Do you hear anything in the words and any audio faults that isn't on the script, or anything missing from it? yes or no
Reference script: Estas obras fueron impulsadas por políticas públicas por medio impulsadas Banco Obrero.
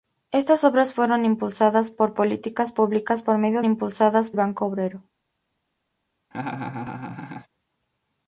yes